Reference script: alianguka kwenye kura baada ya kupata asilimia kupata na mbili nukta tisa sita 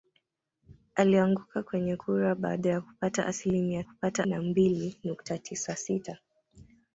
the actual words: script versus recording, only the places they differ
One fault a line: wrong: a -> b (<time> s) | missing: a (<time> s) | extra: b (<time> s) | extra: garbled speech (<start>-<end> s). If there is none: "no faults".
no faults